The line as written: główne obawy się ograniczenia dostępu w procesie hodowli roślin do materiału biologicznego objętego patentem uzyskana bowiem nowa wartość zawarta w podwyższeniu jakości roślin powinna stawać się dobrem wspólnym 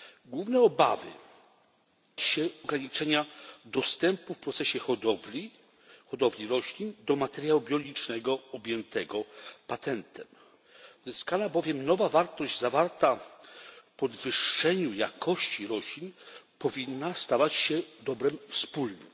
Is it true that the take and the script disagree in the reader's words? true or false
false